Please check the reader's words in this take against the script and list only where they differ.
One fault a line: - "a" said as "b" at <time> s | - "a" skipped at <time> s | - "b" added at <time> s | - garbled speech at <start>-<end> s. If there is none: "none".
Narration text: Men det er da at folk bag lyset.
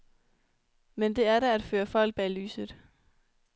- "føre" added at 1.6 s